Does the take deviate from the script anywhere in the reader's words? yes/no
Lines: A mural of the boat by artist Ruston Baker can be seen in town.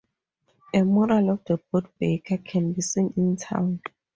yes